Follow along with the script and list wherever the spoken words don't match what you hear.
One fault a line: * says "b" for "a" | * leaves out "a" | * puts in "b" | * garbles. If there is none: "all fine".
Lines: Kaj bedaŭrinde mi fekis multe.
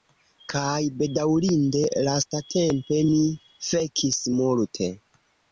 * puts in "lastatempe"